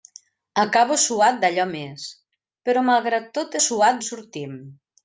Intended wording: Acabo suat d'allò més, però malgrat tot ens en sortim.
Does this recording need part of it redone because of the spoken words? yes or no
yes